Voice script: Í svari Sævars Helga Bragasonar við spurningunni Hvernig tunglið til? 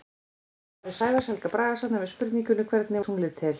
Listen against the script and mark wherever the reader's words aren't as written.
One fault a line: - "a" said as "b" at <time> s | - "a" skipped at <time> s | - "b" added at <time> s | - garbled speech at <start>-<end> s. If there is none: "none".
none